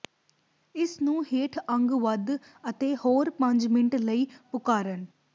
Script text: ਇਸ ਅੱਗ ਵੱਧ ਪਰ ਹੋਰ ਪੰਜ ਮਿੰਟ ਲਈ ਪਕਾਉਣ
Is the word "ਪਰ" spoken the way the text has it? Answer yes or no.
no